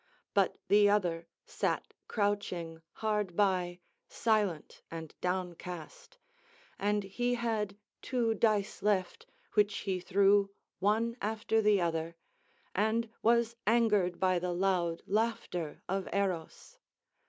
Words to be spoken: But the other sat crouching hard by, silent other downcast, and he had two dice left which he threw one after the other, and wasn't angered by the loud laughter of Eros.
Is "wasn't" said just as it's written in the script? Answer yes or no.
no